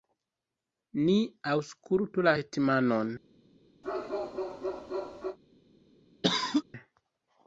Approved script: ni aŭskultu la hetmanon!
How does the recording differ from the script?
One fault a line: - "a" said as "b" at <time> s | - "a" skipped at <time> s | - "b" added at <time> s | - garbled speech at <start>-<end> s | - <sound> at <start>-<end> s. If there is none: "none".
- bark at 3.8-5.4 s
- cough at 6.2-6.6 s